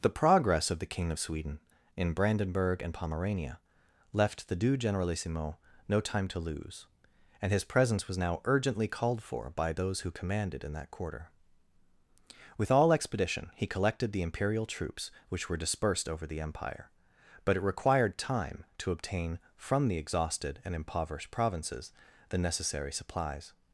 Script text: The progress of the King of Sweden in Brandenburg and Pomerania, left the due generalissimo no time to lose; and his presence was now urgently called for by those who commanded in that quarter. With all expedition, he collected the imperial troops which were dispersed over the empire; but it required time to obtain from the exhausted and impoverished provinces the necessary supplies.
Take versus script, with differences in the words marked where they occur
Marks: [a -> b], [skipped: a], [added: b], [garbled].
The progress of the King of Sweden in Brandenburg and Pomerania, left the due generalissimo no time to lose; and his presence was now urgently called for by those who commanded in that quarter. With all expedition, he collected the imperial troops which were dispersed over the empire; but it required time to obtain from the exhausted and impoverished provinces the necessary supplies.